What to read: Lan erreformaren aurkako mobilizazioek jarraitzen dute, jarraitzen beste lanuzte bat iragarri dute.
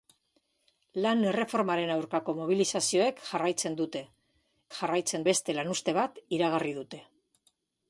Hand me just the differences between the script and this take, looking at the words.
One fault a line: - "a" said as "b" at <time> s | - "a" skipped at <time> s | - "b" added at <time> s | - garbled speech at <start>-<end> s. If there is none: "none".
none